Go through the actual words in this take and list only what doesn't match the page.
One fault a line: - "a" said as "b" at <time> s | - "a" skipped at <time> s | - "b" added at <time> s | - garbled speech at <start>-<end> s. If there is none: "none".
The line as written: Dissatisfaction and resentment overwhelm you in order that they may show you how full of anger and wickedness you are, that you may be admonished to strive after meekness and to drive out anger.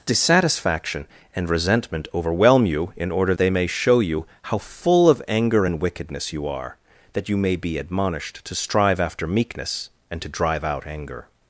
- "that" skipped at 3.4 s